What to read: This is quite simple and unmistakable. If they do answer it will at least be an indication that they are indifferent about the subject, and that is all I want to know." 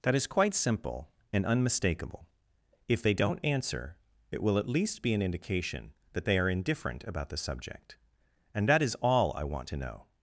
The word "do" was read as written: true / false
false